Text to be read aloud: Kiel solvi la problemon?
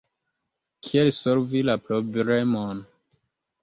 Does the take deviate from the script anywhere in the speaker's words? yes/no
no